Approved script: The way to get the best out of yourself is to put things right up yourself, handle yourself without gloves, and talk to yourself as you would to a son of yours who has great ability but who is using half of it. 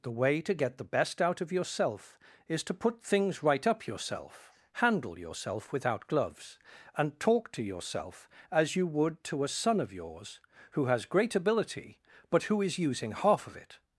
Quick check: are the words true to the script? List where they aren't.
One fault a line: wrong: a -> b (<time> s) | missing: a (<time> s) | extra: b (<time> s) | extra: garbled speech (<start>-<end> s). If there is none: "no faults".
no faults